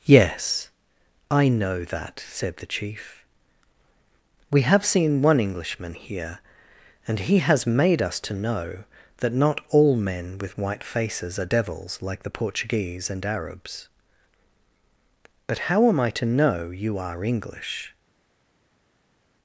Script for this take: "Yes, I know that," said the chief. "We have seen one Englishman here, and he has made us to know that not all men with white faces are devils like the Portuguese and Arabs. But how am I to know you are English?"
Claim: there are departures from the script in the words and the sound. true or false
false